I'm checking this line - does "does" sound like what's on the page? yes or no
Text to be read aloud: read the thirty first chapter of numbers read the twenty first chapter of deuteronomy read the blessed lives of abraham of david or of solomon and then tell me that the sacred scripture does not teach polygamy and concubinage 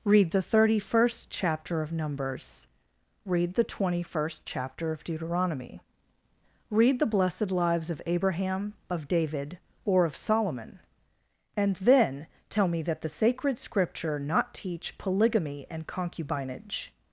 no